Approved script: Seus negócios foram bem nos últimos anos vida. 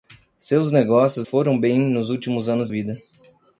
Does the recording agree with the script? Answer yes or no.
yes